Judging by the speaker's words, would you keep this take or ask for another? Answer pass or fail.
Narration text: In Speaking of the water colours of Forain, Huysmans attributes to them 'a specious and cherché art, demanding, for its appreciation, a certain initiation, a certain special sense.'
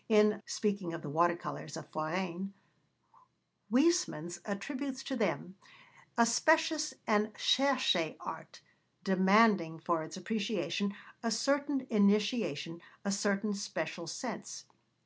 pass